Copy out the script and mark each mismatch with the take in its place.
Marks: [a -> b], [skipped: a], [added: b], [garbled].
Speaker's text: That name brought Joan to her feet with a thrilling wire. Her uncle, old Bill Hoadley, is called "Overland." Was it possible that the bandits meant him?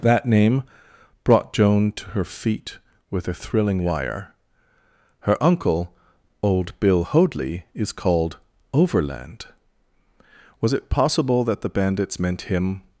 That name brought Joan to her feet with a thrilling wire. Her uncle, old Bill Hoadley, is called "Overland." Was it possible that the bandits meant him?